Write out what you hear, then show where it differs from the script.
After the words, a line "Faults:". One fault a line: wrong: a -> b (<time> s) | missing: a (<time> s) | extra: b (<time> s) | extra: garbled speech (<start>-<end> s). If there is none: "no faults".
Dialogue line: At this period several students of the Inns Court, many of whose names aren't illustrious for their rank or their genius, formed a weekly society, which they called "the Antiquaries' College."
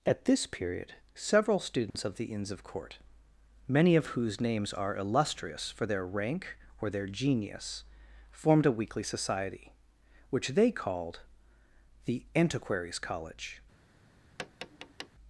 At this period several students of the Inns of Court, many of whose names are illustrious for their rank or their genius, formed a weekly society, which they called "the Antiquaries' College."
Faults:
extra: of (2.5 s)
wrong: aren't -> are (4.7 s)